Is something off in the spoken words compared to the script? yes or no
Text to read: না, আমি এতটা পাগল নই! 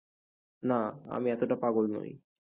no